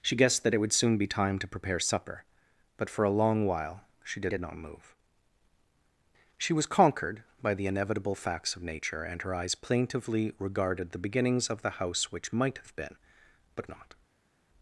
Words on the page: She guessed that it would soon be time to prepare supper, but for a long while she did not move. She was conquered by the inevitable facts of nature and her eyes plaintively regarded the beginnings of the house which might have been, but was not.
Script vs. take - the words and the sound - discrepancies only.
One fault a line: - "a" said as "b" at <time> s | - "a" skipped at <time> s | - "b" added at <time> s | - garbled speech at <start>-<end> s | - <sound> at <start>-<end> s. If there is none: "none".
- "did" added at 4.3 s
- "was" skipped at 13.7 s